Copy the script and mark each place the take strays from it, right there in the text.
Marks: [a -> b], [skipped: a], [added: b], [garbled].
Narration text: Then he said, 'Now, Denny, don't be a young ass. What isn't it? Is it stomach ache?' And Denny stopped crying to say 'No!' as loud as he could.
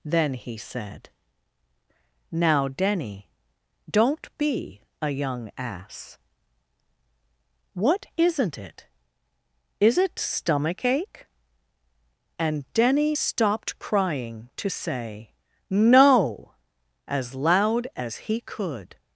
Then he said, 'Now, Denny, don't be a young ass. What isn't it? Is it stomach ache?' And Denny stopped crying to say 'No!' as loud as he could.